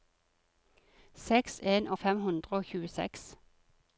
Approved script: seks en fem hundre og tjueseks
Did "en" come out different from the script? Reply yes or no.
no